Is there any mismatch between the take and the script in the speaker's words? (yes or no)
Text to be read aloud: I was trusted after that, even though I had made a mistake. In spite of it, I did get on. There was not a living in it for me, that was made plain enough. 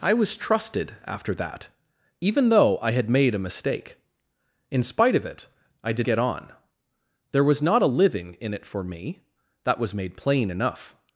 no